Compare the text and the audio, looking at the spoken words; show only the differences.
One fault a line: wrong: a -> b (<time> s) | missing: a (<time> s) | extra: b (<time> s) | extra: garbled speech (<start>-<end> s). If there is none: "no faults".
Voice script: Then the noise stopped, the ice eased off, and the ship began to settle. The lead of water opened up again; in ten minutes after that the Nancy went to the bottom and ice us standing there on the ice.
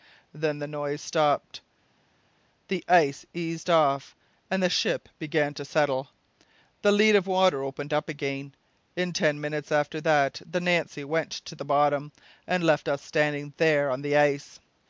wrong: ice -> left (12.6 s)